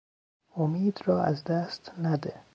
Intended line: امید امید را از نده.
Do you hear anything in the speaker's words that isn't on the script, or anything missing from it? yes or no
yes